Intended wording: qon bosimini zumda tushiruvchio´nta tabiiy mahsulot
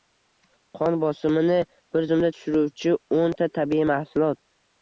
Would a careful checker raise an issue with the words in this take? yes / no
yes